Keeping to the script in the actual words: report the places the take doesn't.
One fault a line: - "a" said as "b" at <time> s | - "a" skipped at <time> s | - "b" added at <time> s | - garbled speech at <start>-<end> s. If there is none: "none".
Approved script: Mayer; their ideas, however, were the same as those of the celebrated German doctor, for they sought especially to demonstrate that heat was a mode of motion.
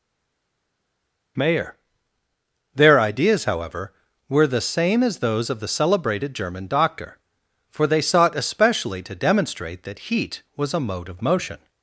none